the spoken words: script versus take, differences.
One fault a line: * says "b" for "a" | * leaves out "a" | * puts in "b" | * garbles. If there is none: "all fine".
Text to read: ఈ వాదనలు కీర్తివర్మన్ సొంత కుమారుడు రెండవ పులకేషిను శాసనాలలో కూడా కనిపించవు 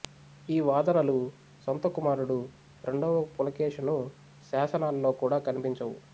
* leaves out "కీర్తివర్మన్"